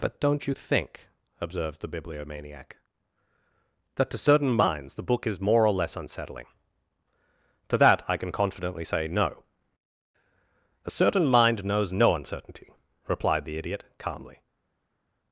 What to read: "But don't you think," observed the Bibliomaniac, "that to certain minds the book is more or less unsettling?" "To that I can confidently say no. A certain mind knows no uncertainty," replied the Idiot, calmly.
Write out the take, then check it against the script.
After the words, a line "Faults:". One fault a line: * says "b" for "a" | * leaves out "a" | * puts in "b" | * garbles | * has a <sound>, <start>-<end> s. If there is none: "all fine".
"But don't you think," observed the Bibliomaniac, "that to certain minds the book is more or less unsettling?" "To that I can confidently say no. A certain mind knows no uncertainty," replied the Idiot, calmly.
Faults:
all fine